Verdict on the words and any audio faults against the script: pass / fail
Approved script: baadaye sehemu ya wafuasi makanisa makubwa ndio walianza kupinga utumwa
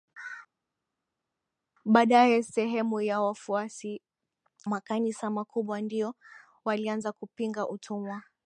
pass